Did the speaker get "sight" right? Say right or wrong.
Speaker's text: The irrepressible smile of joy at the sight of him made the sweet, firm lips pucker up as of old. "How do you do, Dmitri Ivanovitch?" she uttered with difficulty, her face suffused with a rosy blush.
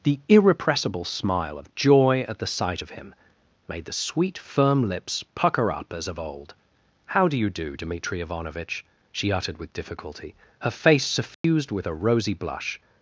right